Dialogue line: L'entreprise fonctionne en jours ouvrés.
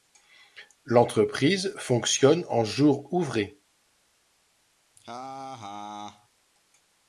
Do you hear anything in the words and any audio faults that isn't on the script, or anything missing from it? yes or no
yes